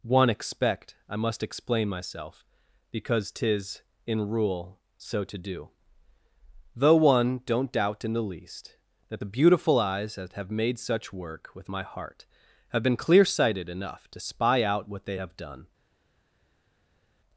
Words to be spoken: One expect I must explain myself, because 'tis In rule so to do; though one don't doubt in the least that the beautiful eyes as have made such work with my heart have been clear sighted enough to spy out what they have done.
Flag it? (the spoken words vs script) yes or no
yes